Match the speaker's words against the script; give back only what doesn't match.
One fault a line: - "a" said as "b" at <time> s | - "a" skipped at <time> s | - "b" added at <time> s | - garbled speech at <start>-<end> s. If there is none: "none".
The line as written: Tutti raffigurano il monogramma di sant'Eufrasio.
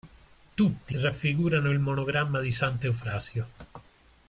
none